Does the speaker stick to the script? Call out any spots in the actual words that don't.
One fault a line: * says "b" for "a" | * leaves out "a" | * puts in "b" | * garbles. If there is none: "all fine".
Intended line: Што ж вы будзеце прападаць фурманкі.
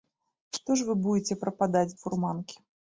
all fine